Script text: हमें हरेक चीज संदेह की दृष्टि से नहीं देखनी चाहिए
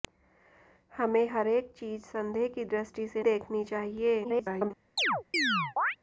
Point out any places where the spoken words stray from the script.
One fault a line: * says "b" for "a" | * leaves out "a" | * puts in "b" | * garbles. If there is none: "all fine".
* leaves out "नहीं"
* garbles